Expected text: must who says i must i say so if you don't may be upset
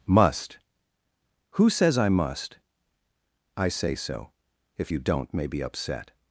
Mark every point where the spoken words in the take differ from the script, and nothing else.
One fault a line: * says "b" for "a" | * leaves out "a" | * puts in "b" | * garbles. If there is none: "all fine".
all fine